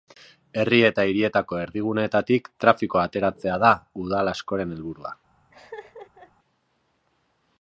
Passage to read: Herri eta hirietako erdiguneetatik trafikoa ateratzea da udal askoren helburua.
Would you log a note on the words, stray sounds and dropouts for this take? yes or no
yes